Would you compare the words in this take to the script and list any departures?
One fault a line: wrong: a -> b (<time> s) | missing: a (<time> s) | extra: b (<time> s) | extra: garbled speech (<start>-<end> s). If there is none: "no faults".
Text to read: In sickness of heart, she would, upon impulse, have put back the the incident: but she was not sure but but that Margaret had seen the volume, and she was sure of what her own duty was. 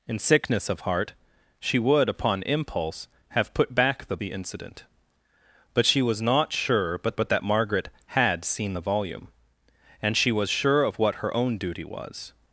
no faults